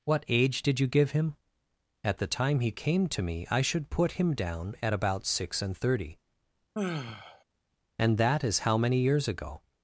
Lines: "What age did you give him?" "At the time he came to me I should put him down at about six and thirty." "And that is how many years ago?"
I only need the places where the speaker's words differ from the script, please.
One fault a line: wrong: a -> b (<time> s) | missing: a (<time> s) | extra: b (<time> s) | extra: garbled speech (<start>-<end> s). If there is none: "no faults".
no faults